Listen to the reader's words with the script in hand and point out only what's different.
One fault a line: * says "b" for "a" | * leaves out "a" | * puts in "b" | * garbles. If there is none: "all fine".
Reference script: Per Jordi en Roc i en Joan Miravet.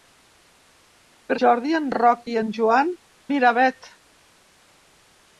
all fine